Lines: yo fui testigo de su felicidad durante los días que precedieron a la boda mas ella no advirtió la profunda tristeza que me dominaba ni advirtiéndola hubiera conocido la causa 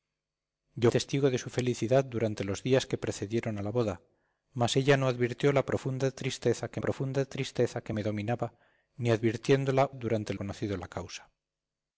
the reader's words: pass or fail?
fail